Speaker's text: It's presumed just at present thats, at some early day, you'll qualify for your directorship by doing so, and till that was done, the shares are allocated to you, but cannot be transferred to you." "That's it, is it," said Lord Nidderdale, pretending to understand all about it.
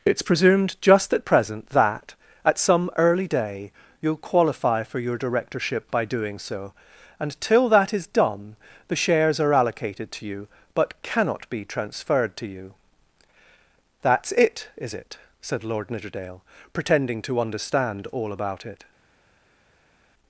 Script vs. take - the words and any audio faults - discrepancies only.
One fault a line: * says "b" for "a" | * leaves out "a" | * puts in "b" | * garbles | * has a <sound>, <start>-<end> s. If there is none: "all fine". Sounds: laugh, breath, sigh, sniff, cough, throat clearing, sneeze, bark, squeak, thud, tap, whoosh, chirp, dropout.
* says "that" for "thats"
* says "is" for "was"